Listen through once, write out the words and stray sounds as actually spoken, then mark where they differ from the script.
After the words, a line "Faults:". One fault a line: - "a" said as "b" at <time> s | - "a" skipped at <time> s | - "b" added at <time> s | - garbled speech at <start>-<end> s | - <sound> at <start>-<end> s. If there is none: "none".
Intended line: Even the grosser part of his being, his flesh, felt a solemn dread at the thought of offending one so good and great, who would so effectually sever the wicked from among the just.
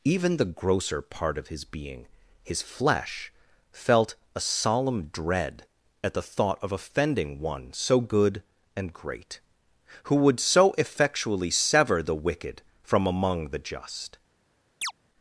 Even the grosser part of his being, his flesh, felt a solemn dread at the thought of offending one so good and great, who would so effectually sever the wicked from among the just.
Faults:
- chirp at 14.8-14.9 s